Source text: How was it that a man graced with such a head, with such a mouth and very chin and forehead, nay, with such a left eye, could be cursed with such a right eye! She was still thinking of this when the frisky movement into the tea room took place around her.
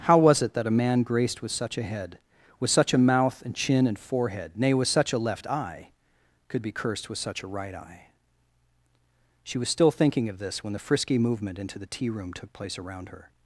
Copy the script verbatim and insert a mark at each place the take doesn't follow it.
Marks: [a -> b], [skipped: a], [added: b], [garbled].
How was it that a man graced with such a head, with such a mouth and [skipped: very] chin and forehead, nay, with such a left eye, could be cursed with such a right eye! She was still thinking of this when the frisky movement into the tea room took place around her.